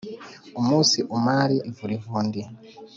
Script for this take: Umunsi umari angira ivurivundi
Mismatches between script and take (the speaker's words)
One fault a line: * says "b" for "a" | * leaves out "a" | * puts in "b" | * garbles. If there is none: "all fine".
* leaves out "angira"